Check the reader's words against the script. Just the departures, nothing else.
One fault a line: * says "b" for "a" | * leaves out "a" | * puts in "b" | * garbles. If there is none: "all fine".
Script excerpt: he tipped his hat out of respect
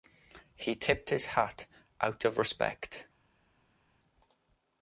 all fine